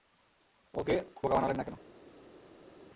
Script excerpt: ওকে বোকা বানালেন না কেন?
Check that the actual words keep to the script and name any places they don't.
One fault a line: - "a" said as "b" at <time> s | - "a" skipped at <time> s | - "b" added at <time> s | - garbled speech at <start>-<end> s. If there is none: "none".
none